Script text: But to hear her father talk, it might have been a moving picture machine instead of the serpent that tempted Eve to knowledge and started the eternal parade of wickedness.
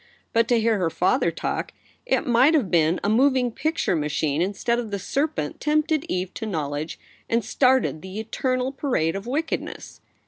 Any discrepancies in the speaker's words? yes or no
yes